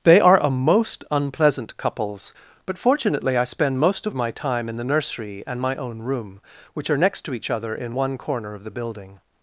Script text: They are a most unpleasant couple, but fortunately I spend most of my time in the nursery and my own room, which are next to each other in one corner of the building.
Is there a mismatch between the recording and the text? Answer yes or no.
yes